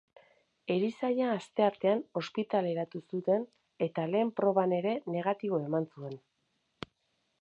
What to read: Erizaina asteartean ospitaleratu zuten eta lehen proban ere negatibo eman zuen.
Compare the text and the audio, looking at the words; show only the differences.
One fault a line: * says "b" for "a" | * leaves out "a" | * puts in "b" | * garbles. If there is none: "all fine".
all fine